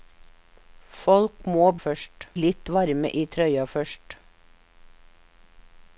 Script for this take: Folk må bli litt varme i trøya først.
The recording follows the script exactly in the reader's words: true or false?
false